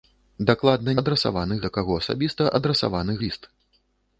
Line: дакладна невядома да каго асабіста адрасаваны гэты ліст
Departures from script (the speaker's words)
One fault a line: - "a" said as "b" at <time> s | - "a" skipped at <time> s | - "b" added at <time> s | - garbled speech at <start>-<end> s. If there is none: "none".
- "невядома" said as "адрасаваны" at 1.0 s
- "гэты" skipped at 3.2 s